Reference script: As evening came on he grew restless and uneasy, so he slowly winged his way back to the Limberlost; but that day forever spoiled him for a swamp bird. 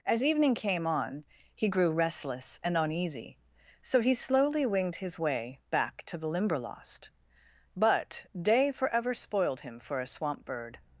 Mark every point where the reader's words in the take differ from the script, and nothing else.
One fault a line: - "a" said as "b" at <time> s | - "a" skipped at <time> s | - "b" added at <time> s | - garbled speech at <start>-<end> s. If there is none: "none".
- "that" skipped at 8.2 s